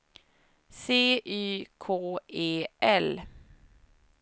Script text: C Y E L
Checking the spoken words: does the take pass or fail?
fail